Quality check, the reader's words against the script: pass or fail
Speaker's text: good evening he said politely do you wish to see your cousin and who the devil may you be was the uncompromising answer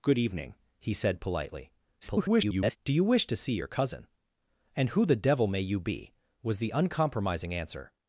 fail